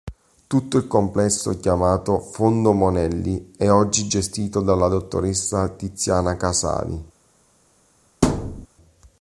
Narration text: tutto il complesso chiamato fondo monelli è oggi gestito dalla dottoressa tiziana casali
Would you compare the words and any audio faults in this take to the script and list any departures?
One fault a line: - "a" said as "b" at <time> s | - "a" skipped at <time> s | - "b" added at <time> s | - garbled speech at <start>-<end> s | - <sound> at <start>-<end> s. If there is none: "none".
- thud at 8.2-8.7 s